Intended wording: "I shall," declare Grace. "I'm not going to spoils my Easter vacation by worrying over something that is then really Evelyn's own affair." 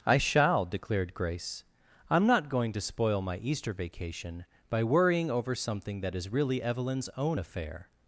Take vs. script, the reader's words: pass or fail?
fail